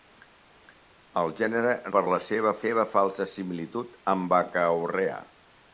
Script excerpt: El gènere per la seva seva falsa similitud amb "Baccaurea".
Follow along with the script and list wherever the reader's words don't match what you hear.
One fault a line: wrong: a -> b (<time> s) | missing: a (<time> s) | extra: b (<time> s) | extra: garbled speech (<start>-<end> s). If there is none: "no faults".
no faults